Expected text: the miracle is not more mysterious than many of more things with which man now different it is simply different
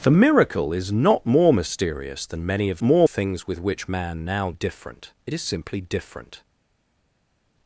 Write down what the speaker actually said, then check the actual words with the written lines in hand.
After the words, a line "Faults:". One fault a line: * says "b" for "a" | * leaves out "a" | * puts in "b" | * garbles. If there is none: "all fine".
the miracle is not more mysterious than many of more things with which man now different it is simply different
Faults:
all fine